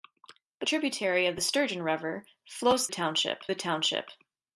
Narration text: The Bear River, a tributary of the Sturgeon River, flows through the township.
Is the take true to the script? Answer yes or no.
no